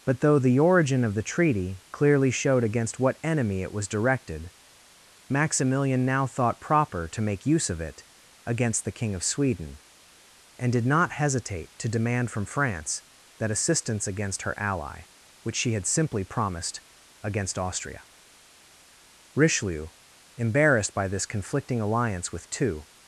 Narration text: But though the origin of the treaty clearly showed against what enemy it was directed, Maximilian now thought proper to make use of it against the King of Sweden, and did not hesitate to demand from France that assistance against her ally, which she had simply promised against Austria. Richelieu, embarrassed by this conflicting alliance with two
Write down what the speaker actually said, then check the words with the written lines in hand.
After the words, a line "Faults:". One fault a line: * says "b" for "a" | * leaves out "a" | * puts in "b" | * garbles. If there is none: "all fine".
But though the origin of the treaty clearly showed against what enemy it was directed, Maximilian now thought proper to make use of it against the King of Sweden, and did not hesitate to demand from France that assistance against her ally, which she had simply promised against Austria. Richelieu, embarrassed by this conflicting alliance with two
Faults:
all fine